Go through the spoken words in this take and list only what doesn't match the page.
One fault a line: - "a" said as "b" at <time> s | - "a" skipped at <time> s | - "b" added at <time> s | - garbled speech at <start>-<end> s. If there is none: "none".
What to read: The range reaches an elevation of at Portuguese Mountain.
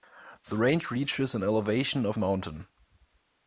- "at Portuguese" skipped at 2.2 s